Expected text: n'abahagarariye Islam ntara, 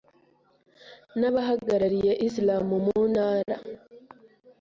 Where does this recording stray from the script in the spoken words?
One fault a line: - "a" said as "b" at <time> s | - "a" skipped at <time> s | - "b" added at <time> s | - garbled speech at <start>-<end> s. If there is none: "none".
- "mu" added at 2.8 s